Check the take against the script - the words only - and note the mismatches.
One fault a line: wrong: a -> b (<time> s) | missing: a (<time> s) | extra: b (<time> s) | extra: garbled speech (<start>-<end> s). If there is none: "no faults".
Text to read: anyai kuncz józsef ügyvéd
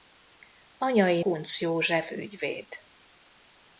no faults